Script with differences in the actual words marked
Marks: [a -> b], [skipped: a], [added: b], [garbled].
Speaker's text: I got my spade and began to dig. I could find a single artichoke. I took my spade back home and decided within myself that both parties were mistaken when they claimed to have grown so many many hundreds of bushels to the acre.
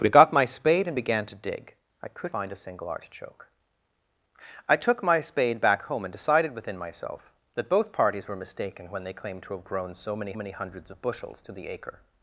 I got my spade and began to dig. I could find a single artichoke. I took my spade back home and decided within myself that both parties were mistaken when they claimed to have grown so many many hundreds of bushels to the acre.